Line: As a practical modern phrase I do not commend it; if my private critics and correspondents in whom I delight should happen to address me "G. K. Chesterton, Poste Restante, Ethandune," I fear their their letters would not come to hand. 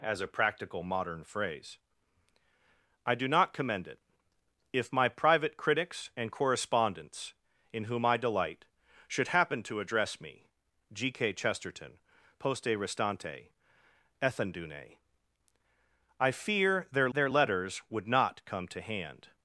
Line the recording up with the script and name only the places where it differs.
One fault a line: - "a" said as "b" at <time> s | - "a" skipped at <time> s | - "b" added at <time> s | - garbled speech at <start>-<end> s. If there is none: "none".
none